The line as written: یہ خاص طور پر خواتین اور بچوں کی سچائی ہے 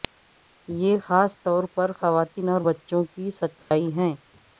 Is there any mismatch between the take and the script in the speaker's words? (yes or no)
no